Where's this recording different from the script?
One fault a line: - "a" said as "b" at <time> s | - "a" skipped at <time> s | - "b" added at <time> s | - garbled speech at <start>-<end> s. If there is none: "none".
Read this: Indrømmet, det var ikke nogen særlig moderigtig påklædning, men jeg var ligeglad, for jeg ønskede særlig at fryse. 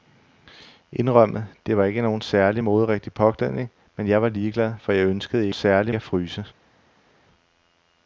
none